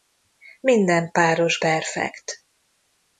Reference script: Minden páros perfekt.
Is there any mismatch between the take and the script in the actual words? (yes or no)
no